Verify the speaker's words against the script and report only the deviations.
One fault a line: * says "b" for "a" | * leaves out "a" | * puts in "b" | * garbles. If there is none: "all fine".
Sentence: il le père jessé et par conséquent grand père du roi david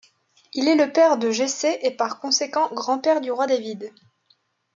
* puts in "est"
* puts in "de"